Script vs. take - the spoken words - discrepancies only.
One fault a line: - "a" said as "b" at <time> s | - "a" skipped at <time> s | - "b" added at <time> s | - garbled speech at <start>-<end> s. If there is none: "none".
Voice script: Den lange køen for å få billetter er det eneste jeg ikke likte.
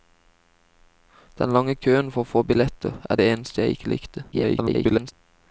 - garbled speech at 4.3-5.1 s